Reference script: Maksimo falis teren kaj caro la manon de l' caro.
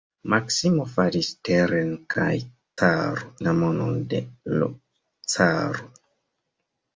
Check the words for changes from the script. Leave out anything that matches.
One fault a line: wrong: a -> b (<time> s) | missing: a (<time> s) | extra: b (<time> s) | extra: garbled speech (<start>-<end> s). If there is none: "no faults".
no faults